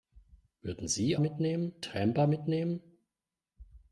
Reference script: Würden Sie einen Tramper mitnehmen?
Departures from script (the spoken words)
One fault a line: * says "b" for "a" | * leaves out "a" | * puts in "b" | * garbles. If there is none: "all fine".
* says "mitnehmen" for "einen"